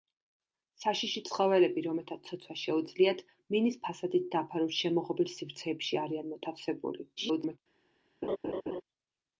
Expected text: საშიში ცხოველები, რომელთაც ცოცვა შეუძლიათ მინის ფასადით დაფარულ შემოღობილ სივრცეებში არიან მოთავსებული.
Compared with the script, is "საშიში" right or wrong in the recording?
right